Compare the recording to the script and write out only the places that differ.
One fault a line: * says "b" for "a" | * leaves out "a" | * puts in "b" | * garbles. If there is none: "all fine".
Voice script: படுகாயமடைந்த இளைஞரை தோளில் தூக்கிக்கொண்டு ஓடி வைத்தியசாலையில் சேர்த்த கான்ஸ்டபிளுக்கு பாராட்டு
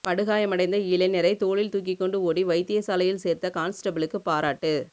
all fine